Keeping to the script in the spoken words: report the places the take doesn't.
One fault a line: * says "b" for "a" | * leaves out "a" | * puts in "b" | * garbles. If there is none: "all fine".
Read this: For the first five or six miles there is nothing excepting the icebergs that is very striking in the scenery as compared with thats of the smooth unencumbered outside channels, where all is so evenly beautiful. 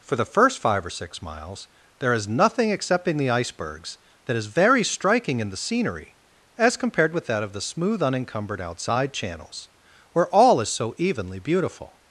* says "that" for "thats"